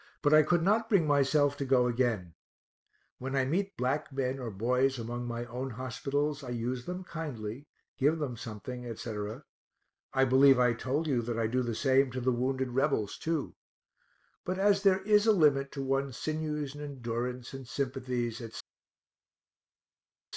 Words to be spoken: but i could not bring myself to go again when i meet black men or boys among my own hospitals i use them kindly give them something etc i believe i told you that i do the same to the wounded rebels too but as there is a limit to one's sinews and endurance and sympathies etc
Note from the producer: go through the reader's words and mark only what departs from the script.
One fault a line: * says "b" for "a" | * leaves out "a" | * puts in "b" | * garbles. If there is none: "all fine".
all fine